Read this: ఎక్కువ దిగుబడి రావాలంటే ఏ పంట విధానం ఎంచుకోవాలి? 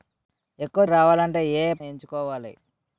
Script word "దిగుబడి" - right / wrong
wrong